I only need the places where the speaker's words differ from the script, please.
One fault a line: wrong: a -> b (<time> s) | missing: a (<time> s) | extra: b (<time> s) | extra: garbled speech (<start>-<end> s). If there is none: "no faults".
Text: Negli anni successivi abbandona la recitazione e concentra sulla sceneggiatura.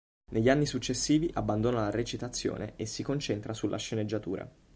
extra: si (2.9 s)